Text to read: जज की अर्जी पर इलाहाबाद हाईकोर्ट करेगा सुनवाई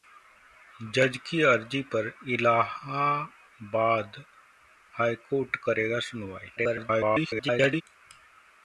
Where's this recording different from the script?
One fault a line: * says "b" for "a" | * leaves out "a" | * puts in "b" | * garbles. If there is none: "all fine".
* garbles